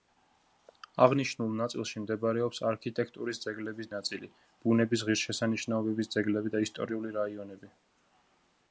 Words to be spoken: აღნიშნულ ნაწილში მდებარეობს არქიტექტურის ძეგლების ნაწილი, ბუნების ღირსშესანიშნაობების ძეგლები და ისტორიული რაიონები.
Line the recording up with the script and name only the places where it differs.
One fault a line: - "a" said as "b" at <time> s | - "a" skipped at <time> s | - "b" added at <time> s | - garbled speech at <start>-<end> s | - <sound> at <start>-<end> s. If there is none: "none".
none